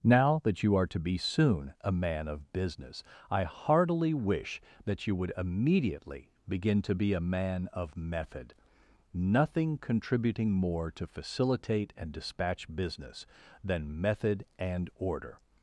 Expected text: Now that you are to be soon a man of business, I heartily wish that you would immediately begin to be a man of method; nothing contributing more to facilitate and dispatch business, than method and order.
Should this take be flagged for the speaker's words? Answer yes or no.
no